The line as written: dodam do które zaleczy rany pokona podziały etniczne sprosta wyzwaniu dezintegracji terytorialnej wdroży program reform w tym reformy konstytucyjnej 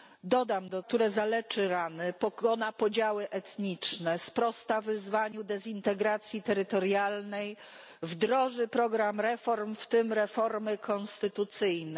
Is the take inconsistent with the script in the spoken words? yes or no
no